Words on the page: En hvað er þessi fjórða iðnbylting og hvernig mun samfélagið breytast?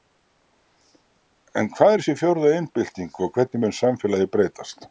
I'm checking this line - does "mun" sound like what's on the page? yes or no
yes